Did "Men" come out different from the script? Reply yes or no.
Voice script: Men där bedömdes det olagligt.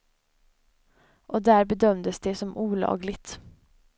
yes